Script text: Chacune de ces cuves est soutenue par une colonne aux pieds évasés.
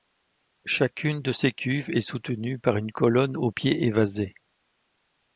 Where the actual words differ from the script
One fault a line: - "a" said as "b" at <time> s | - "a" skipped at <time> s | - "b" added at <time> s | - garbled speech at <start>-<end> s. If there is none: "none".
none